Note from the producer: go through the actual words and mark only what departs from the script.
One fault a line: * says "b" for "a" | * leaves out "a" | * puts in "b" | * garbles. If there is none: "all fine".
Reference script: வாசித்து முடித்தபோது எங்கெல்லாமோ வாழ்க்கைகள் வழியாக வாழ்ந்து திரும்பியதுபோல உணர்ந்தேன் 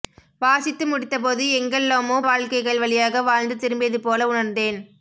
all fine